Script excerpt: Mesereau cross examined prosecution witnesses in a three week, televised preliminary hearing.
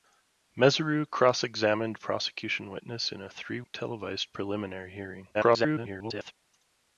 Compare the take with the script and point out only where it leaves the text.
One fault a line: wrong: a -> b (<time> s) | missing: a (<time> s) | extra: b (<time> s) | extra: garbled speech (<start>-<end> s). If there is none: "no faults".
missing: week (3.6 s)
extra: garbled speech (5.3-6.3 s)